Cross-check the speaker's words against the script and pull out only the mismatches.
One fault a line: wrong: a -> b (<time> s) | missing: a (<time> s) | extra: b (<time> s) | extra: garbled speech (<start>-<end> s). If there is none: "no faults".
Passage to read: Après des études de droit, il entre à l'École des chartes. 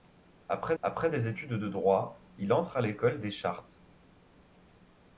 extra: après (0.8 s)